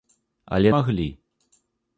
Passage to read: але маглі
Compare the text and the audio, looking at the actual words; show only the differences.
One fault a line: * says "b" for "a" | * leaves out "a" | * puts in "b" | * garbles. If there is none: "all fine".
all fine